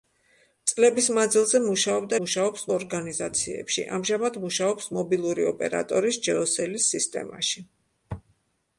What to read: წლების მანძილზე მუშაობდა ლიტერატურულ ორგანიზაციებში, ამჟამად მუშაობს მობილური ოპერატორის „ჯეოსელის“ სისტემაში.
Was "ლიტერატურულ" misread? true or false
true